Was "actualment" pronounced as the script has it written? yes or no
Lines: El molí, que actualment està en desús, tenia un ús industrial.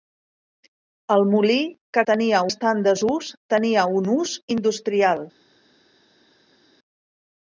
no